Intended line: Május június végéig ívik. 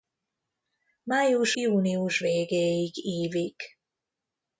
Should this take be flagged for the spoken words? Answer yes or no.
no